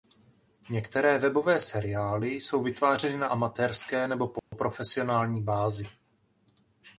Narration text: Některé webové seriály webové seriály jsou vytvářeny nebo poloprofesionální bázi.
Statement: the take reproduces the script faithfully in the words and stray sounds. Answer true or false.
false